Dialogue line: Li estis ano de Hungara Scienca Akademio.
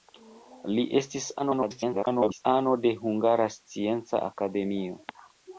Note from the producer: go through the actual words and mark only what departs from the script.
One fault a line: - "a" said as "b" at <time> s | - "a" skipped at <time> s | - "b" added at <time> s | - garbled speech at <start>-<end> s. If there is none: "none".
- garbled speech at 1.4-2.5 s